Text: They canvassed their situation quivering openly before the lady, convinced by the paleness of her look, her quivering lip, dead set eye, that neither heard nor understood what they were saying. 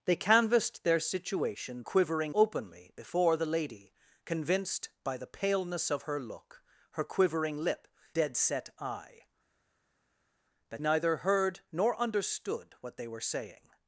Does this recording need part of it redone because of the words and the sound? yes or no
no